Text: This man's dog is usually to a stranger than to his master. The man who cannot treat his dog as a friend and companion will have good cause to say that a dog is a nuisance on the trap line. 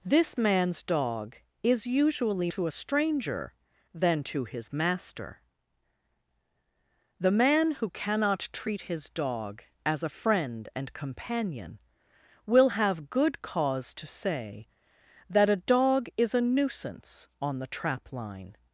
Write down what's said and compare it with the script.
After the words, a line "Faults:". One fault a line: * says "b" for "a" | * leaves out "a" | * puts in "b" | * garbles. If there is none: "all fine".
This man's dog is usually to a stranger than to his master. The man who cannot treat his dog as a friend and companion will have good cause to say that a dog is a nuisance on the trap line.
Faults:
all fine